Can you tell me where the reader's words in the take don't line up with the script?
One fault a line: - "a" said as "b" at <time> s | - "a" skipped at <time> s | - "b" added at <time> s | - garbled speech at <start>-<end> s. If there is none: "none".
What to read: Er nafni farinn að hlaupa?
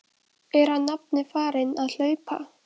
- "hann" added at 0.8 s